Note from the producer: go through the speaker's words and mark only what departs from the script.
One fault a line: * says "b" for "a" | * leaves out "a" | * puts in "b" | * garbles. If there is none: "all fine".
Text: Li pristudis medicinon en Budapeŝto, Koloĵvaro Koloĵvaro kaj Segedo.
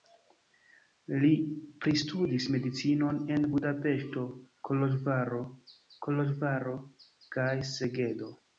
all fine